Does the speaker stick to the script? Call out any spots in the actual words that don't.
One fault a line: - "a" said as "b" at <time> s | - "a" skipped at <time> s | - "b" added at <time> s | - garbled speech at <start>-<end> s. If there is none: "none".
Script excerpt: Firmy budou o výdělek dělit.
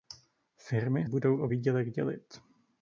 none